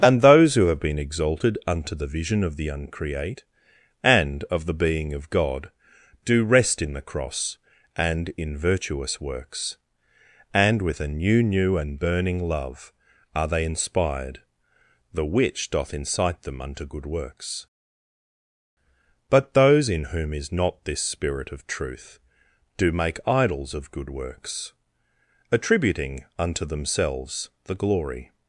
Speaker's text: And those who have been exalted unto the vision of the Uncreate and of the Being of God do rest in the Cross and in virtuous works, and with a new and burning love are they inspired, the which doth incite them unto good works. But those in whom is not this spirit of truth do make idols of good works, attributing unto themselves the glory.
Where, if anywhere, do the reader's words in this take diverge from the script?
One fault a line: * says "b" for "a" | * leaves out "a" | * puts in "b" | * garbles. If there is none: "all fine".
* puts in "new"